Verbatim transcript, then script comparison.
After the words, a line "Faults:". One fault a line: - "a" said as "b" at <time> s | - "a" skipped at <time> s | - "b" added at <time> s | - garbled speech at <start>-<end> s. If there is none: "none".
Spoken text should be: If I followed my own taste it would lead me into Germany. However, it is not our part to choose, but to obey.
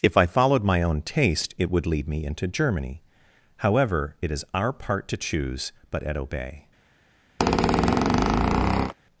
If I followed my own taste it would lead me into Germany. However, it is our part to choose, but at obey.
Faults:
- "not" skipped at 4.5 s
- "to" said as "at" at 6.0 s